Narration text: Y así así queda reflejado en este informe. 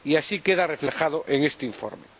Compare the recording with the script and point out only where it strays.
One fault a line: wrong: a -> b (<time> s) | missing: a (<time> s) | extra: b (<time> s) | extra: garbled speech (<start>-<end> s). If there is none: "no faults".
missing: así (0.4 s)